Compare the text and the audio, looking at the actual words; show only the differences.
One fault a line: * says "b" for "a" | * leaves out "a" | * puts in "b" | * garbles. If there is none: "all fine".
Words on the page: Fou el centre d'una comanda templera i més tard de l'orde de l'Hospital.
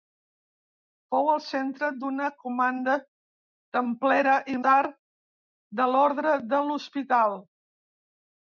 * leaves out "més"